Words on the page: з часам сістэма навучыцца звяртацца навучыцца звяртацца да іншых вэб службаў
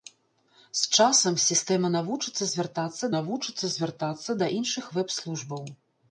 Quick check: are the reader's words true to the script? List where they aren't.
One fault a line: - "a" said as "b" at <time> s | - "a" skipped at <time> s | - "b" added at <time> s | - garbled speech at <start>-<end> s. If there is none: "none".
none